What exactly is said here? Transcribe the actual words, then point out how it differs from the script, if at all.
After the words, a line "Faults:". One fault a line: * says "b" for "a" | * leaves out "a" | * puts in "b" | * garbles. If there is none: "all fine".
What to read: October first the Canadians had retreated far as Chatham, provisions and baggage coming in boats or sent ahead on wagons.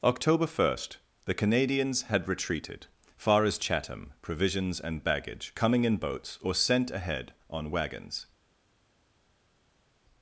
October first the Canadians had retreated far as Chatham, provisions and baggage coming in boats or sent ahead on wagons.
Faults:
all fine